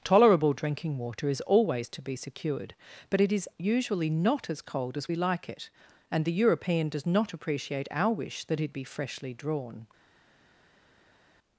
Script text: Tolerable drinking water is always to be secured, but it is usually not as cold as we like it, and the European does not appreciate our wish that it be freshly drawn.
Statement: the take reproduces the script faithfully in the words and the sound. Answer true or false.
true